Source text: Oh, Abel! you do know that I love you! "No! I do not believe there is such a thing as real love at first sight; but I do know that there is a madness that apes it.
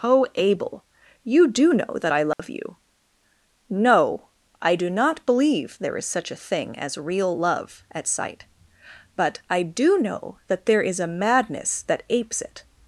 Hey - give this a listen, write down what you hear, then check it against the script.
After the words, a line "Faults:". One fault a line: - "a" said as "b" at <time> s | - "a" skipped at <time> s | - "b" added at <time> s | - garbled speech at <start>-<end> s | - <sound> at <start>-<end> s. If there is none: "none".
Oh, Abel! you do know that I love you! "No! I do not believe there is such a thing as real love at sight; but I do know that there is a madness that apes it.
Faults:
- dropout at 2.3-2.4 s
- "first" skipped at 8.1 s